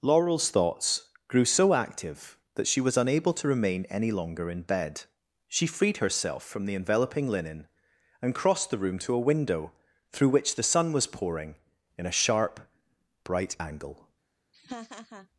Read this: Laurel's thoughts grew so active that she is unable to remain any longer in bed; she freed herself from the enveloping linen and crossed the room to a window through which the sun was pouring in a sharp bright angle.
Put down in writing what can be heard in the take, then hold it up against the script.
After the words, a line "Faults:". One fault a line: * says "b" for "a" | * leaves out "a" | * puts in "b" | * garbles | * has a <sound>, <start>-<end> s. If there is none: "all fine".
Laurel's thoughts grew so active that she was unable to remain any longer in bed; she freed herself from the enveloping linen and crossed the room to a window through which the sun was pouring in a sharp bright angle.
Faults:
* says "was" for "is"
* has a laugh, 14.5-15.3 s